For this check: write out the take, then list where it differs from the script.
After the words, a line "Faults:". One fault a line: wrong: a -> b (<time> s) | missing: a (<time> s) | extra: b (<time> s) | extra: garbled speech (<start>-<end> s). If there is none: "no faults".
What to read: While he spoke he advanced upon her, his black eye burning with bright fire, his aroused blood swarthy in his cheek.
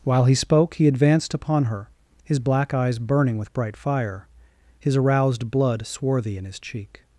While he spoke he advanced upon her, his black eyes burning with bright fire, his aroused blood swarthy in his cheek.
Faults:
wrong: eye -> eyes (2.7 s)